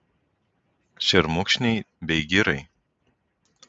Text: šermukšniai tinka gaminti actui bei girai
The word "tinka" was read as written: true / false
false